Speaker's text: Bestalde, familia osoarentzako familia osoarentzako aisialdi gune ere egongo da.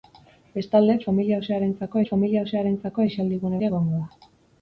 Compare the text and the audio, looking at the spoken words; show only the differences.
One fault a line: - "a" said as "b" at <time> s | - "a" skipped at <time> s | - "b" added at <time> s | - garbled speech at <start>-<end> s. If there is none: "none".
none